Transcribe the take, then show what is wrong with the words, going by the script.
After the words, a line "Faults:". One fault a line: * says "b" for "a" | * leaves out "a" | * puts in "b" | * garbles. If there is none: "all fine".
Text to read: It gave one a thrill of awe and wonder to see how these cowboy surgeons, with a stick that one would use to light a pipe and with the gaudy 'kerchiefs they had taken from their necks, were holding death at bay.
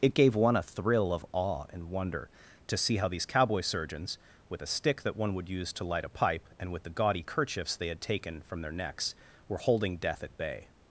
It gave one a thrill of awe and wonder to see how these cowboy surgeons, with a stick that one would use to light a pipe and with the gaudy 'kerchiefs they had taken from their necks, were holding death at bay.
Faults:
all fine